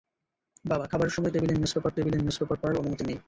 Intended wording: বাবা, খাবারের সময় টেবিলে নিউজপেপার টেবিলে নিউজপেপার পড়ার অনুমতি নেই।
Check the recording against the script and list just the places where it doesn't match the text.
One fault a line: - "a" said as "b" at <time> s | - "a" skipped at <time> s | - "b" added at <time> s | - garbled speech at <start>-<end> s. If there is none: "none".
none